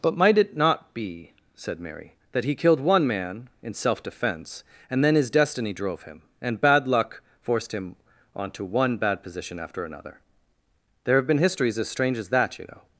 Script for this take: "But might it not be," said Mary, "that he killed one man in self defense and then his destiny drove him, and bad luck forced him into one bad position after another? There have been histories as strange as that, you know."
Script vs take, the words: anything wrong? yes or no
yes